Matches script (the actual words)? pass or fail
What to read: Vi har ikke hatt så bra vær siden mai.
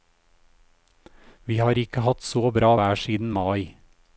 pass